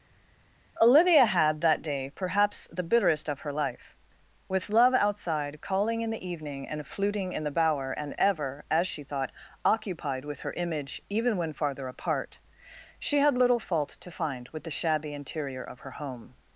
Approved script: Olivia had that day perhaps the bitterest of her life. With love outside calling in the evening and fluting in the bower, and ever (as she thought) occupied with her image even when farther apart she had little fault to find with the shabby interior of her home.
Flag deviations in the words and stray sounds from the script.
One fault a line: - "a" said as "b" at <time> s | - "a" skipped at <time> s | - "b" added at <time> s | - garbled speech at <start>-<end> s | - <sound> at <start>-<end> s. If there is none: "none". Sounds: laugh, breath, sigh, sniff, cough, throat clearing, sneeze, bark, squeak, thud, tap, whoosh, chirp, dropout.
none